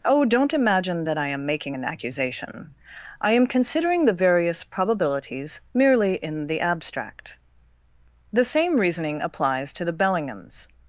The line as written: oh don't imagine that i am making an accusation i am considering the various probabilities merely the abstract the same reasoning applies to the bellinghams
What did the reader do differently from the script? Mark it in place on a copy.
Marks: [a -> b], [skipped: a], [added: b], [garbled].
oh don't imagine that i am making an accusation i am considering the various probabilities merely [added: in] the abstract the same reasoning applies to the bellinghams